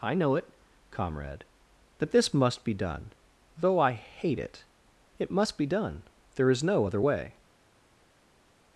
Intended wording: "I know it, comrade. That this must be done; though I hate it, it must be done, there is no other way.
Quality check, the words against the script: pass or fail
pass